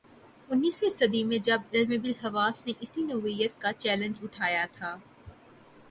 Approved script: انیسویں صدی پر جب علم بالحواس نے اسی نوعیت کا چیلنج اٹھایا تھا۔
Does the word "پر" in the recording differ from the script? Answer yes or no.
yes